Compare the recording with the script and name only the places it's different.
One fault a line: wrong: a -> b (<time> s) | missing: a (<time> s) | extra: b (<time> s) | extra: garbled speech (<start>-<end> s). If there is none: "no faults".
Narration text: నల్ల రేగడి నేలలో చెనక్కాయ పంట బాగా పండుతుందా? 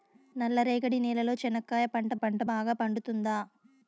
extra: పంట (2.1 s)